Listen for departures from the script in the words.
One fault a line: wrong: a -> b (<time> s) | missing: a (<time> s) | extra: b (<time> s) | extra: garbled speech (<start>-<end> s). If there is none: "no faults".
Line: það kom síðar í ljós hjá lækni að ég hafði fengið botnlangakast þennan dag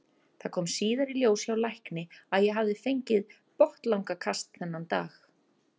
no faults